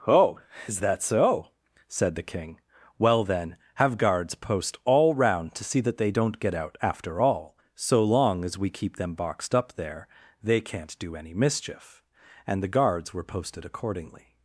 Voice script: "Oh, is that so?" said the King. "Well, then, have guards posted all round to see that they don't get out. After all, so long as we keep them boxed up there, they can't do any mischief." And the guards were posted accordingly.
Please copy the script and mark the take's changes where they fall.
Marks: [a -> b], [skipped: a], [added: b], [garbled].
"Oh, is that so?" said the King. "Well, then, have guards [posted -> post] all round to see that they don't get out. After all, so long as we keep them boxed up there, they can't do any mischief." And the guards were posted accordingly.